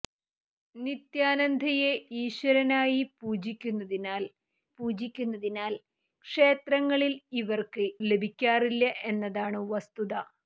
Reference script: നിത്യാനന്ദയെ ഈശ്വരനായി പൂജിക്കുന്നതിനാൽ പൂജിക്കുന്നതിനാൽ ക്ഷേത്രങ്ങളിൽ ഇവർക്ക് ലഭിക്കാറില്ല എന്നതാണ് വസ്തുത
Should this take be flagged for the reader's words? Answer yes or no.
no